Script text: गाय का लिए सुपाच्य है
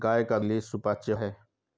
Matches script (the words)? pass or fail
pass